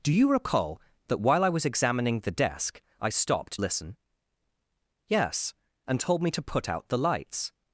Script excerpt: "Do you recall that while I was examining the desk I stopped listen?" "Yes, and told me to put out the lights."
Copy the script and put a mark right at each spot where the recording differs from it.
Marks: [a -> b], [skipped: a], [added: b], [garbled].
"Do you recall that while I was examining the desk I stopped listen?" "Yes, and told me to put out the lights."